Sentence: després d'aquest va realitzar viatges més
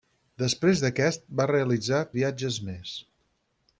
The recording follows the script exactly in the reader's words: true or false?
true